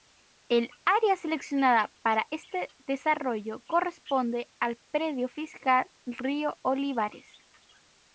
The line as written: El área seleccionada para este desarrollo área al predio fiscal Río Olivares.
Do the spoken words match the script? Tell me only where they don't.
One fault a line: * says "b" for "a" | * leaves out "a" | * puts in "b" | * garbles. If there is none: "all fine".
* says "corresponde" for "área"